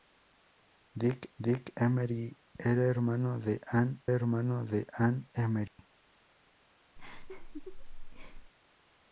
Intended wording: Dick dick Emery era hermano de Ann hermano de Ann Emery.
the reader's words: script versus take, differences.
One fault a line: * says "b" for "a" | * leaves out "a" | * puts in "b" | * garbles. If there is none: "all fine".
all fine